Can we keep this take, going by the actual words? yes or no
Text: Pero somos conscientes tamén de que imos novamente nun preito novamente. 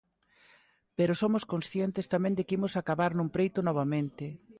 no